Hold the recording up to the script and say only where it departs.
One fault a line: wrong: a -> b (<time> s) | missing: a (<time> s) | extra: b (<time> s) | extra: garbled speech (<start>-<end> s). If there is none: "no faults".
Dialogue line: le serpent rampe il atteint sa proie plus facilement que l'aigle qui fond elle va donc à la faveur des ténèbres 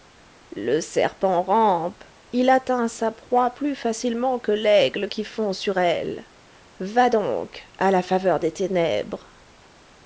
extra: sur (5.5 s)